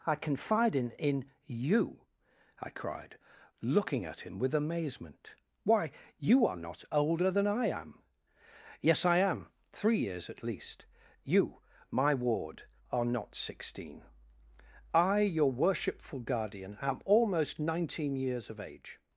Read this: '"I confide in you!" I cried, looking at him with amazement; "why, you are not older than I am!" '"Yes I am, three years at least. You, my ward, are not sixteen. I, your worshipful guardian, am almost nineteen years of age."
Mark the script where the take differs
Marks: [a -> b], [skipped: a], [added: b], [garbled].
'"I confide in [added: in] you!" I cried, looking at him with amazement; "why, you are not older than I am!" '"Yes I am, three years at least. You, my ward, are not sixteen. I, your worshipful guardian, am almost nineteen years of age."